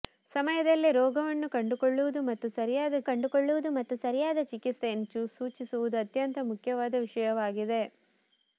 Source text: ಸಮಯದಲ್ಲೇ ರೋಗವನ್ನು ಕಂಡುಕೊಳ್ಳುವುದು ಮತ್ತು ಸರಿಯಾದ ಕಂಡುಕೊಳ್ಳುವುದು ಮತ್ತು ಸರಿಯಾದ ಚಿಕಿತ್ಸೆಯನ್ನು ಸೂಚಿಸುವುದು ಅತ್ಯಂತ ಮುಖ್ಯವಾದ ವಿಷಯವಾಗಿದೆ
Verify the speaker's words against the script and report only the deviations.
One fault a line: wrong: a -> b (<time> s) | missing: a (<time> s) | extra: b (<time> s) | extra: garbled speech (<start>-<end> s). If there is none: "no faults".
no faults